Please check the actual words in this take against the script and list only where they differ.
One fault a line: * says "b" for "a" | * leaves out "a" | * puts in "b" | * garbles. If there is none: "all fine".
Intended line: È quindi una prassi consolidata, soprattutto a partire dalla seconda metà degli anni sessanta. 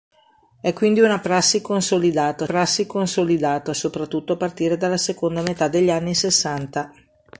* puts in "prassi consolidata"